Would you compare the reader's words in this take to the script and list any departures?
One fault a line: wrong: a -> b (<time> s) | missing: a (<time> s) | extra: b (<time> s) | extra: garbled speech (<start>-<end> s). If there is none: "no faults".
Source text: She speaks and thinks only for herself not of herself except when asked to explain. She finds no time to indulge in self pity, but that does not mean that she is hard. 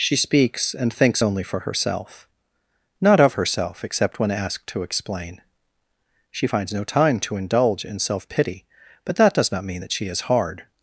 no faults